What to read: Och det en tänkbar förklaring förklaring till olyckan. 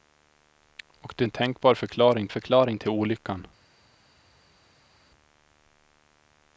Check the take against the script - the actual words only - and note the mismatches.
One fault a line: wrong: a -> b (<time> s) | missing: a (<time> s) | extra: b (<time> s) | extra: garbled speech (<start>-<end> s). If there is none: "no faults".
no faults